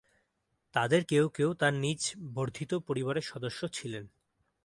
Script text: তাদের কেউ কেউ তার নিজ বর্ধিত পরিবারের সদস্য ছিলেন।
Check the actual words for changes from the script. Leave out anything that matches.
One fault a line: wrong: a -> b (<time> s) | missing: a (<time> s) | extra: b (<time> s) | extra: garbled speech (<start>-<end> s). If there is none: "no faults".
no faults